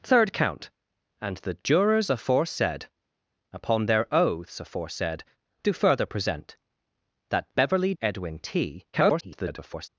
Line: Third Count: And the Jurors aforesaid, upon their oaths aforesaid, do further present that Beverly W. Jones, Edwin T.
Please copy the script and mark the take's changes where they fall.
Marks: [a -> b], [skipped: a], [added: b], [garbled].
Third Count: And the Jurors aforesaid, upon their oaths aforesaid, do further present that Beverly [skipped: W. Jones,] Edwin T. [garbled]